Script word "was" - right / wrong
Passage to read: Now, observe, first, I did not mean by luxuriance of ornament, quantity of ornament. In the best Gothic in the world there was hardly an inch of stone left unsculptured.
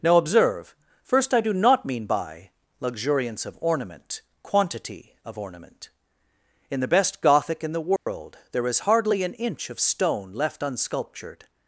wrong